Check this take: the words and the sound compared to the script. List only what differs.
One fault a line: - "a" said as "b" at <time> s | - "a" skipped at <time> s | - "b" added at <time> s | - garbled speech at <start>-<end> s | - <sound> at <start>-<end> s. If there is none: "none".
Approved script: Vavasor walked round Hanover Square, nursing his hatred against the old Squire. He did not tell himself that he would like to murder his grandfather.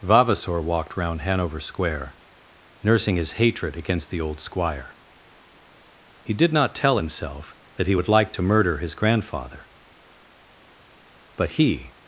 - "But he" added at 11.4 s